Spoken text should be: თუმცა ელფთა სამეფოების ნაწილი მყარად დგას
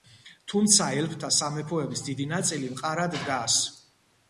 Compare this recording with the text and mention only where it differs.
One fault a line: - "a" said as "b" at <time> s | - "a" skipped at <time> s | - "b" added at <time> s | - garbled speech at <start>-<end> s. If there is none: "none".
- "დიდი" added at 2.1 s